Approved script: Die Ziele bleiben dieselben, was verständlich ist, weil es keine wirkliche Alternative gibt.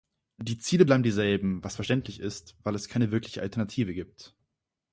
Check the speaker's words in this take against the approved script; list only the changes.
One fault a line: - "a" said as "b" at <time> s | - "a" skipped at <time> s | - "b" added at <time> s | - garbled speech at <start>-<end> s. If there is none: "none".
none